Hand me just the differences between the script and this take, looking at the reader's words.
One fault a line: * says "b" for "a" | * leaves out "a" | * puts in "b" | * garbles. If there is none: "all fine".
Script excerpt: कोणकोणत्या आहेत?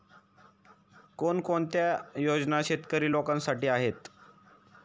* puts in "योजना शेतकरी लोकांसाठी"